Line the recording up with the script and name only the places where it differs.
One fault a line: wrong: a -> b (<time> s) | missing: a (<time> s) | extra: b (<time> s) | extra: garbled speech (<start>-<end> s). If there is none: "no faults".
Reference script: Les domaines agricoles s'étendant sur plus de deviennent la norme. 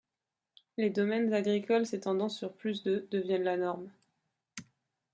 no faults